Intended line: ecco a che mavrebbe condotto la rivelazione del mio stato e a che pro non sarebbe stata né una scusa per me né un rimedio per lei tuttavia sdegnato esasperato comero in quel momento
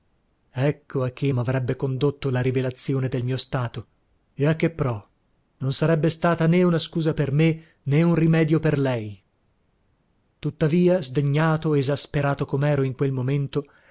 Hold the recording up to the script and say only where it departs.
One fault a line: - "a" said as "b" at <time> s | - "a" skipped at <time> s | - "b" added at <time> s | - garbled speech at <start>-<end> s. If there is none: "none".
none